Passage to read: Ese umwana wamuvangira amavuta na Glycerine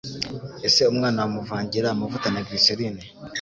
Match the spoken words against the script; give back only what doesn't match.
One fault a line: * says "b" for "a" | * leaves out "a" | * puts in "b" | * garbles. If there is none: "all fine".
all fine